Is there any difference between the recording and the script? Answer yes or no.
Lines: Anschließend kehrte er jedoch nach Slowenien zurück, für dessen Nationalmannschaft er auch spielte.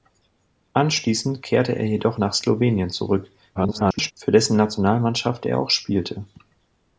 yes